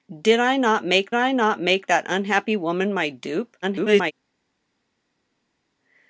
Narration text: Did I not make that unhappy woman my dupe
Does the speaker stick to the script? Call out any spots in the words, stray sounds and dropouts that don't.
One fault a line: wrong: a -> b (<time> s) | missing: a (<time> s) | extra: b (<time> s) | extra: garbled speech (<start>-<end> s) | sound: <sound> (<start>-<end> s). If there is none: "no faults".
extra: I not make (1.1 s)
extra: garbled speech (3.6-4.1 s)